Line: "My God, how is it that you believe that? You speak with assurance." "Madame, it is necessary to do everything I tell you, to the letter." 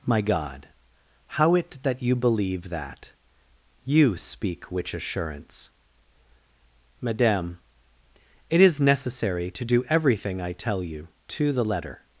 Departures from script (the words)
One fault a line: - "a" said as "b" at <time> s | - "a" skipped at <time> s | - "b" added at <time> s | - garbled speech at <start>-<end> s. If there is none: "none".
- "is" skipped at 1.6 s
- "with" said as "which" at 4.7 s